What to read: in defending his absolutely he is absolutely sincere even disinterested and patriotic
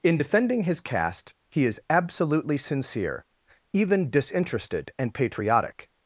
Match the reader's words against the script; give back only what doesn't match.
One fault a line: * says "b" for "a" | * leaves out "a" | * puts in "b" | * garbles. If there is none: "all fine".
* says "caste" for "absolutely"